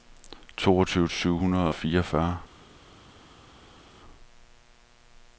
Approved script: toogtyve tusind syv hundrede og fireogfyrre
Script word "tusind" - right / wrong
wrong